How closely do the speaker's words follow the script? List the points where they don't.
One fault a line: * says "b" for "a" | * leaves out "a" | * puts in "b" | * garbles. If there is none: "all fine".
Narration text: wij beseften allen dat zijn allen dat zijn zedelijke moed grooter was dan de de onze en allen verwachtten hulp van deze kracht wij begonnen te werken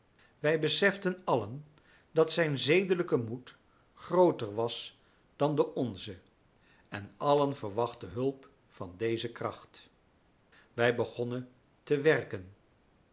* leaves out "allen dat zijn"
* leaves out "de"